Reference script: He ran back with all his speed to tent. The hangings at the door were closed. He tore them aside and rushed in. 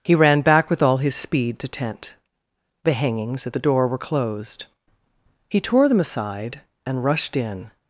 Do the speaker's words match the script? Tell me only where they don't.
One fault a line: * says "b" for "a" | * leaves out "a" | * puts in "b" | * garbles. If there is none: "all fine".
all fine